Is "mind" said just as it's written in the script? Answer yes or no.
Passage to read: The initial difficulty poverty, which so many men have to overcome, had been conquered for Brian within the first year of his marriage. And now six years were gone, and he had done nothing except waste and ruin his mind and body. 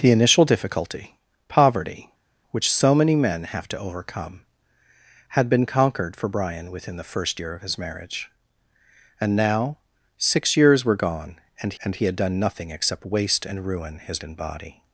no